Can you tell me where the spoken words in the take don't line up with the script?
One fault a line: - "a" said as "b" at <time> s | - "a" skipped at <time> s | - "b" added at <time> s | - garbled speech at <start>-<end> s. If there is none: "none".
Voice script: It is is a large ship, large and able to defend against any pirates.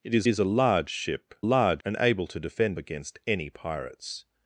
none